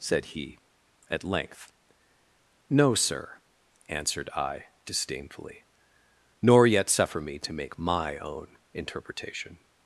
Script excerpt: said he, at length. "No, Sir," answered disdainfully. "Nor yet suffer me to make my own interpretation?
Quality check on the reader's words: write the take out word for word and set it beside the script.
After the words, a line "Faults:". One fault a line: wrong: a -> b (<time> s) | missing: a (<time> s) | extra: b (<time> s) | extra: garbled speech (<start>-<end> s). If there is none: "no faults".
said he, at length. "No, Sir," answered I, disdainfully. "Nor yet suffer me to make my own interpretation?
Faults:
extra: I (4.3 s)